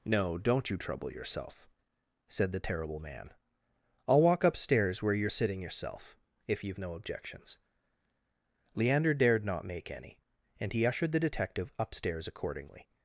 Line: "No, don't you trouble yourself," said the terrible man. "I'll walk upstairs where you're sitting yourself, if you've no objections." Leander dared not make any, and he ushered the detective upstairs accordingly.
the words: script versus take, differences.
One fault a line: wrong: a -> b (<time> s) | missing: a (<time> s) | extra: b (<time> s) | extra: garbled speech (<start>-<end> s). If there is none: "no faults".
no faults